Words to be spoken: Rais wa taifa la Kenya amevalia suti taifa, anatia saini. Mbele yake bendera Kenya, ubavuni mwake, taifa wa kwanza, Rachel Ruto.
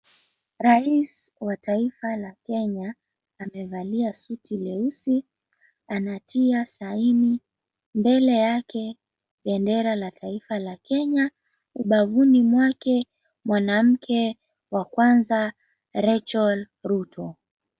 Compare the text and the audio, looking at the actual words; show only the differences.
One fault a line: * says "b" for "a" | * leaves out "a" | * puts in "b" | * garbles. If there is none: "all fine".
* says "leusi" for "taifa"
* puts in "la taifa la"
* says "mwanamke" for "taifa"